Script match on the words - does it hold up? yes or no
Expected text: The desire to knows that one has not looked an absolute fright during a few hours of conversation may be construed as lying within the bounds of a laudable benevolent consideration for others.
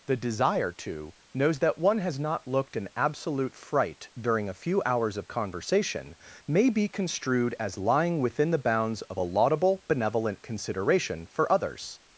yes